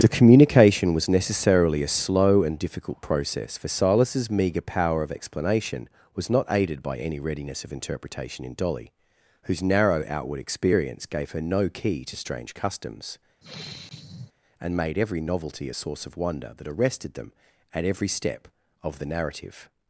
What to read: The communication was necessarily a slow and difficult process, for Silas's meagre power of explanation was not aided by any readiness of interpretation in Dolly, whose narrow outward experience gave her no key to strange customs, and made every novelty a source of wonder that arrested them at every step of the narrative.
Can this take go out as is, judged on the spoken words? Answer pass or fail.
pass